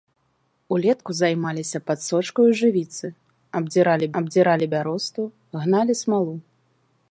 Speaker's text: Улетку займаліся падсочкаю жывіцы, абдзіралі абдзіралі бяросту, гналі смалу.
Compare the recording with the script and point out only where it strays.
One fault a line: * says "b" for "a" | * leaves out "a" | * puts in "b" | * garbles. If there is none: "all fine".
all fine